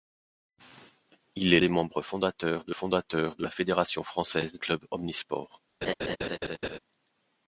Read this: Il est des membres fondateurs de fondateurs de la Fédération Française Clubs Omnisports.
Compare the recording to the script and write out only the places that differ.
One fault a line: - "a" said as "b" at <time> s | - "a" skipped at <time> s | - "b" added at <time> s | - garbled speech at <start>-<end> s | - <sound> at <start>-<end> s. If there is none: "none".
- laugh at 5.8-6.8 s